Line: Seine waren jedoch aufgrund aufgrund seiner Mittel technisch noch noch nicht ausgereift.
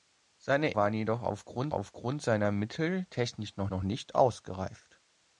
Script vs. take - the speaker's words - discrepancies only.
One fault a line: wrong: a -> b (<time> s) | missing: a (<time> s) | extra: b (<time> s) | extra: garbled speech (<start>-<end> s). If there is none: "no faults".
no faults